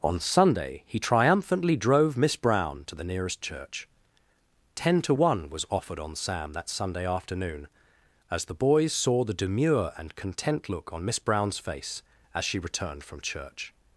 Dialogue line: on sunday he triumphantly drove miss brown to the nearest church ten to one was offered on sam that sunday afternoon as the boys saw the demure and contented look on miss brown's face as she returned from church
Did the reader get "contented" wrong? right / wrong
wrong